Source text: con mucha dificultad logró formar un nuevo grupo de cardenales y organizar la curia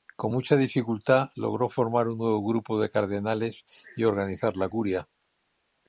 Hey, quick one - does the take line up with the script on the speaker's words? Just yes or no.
yes